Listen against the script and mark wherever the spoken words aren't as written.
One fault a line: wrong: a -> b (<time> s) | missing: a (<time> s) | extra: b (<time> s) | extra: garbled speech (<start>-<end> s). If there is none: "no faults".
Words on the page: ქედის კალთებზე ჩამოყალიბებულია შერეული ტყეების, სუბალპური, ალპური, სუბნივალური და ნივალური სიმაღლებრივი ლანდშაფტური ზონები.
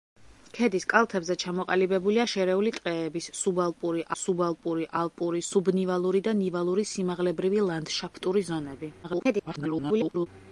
extra: სუბალპური (4.2 s)
extra: garbled speech (9.0-10.3 s)